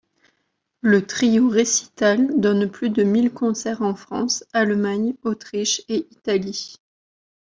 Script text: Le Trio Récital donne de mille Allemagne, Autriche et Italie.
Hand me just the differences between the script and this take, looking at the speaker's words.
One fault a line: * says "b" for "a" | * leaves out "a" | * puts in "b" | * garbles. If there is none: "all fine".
* puts in "plus"
* puts in "concerts en France"